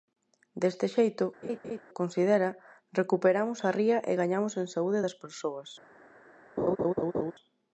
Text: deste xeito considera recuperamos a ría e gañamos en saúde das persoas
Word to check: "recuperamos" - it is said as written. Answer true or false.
true